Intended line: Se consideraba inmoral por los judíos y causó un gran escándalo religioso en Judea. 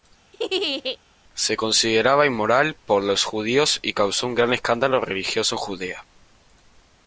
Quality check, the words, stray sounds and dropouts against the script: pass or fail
fail